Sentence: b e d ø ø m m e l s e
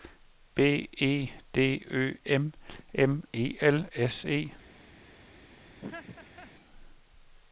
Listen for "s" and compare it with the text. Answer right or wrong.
right